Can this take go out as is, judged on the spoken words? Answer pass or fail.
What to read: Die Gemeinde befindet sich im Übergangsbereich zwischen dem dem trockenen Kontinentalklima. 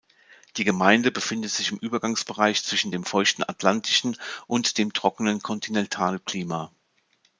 fail